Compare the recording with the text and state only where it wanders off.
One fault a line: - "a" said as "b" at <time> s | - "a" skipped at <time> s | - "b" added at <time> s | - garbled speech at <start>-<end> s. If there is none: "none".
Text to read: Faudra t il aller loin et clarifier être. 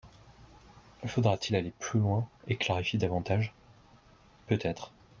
- "plus" added at 1.8 s
- "davantage Peut" added at 3.0 s